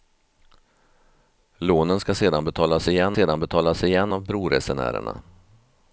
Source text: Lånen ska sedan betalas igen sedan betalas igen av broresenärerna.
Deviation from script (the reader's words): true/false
false